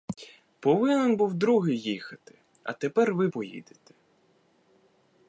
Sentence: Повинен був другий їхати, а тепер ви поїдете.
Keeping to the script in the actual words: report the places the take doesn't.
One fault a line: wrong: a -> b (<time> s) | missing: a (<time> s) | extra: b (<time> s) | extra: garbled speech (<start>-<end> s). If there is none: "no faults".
no faults